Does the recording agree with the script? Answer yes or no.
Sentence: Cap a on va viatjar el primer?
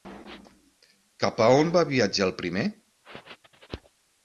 yes